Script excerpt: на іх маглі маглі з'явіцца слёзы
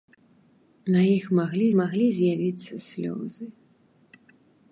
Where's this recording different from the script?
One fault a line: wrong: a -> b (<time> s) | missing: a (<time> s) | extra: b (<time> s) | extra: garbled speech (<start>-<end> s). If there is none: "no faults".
no faults